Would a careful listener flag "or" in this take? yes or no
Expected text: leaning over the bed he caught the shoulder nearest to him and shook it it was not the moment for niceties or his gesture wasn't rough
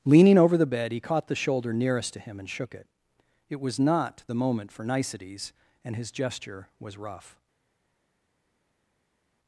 yes